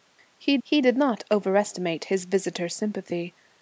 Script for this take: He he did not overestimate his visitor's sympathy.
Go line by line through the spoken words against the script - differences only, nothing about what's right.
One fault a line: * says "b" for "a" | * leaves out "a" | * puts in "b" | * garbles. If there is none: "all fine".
all fine